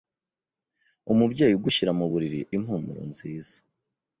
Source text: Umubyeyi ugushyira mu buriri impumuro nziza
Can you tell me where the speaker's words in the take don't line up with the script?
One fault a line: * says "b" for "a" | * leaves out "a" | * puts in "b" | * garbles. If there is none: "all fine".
all fine